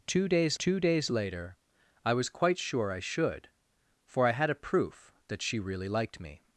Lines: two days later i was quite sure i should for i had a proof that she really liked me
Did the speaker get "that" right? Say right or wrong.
right